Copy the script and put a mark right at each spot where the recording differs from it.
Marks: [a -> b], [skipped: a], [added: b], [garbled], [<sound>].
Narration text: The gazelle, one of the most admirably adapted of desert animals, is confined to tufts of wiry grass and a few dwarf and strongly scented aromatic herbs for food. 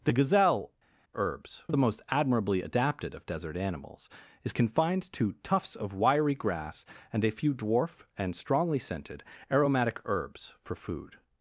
The gazelle, [one -> herbs] of the most admirably adapted of desert animals, is confined to tufts of wiry grass and a few dwarf and strongly scented aromatic herbs for food.